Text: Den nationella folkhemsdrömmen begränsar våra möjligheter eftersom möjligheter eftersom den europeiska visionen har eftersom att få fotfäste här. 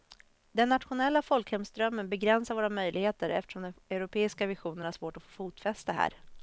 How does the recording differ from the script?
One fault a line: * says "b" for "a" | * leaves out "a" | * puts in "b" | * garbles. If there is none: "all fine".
* leaves out "möjligheter eftersom"
* says "svårt" for "eftersom"